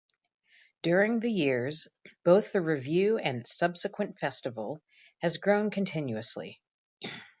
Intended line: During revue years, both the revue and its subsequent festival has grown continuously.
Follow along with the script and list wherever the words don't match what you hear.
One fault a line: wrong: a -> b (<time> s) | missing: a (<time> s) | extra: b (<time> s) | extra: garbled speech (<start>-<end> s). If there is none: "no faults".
wrong: revue -> the (1.2 s)